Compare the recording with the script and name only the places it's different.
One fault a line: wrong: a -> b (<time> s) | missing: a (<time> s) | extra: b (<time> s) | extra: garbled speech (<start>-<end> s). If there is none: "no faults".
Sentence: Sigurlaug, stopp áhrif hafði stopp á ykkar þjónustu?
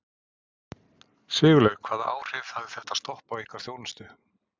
wrong: stopp -> hvaða (1.9 s)
extra: þetta (2.8 s)